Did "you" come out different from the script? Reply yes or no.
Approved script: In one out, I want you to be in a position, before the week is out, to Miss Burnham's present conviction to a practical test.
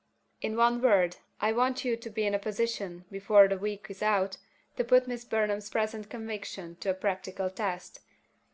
no